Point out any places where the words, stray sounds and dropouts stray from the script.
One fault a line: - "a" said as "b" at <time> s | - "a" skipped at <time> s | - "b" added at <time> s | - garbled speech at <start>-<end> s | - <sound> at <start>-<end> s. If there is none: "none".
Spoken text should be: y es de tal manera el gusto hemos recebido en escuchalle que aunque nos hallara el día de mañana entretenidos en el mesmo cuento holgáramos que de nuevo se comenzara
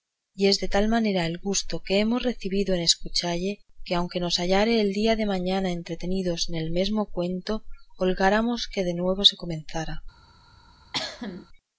- "que" added at 1.9 s
- cough at 10.9-11.5 s